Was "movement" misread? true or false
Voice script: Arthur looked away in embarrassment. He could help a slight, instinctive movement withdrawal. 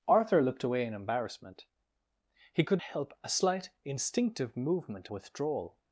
false